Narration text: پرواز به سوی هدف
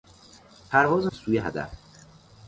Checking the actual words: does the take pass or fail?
pass